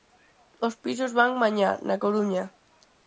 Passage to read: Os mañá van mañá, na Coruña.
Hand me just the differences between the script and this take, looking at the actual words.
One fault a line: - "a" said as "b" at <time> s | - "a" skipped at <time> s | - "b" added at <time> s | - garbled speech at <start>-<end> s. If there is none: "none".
- "mañá" said as "pisos" at 0.8 s